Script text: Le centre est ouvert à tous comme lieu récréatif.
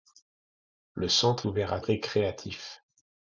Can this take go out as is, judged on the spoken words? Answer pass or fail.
fail